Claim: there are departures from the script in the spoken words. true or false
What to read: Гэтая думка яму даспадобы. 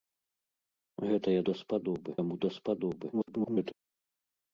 true